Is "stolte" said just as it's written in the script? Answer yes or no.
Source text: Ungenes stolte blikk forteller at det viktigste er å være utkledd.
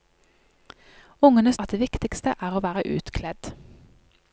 no